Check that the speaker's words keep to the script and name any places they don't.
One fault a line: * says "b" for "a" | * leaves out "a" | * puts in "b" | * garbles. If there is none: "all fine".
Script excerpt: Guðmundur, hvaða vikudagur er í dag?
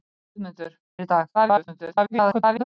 * leaves out "hvaða vikudagur"
* garbles